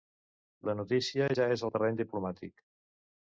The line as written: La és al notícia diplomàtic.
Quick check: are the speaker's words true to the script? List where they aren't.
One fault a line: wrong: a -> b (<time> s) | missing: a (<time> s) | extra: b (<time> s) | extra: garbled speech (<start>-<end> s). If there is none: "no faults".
extra: notícia ja (0.8 s)
wrong: notícia -> terreny (1.8 s)